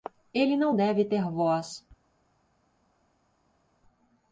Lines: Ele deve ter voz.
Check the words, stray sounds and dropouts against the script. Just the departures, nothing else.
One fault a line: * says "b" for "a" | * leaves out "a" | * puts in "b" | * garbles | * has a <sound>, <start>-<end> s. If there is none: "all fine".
* puts in "não"